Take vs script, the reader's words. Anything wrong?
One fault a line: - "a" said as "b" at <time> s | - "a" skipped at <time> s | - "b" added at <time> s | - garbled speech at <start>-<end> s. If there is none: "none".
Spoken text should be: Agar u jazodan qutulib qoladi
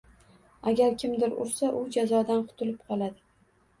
- "kimdir ursa" added at 1.0 s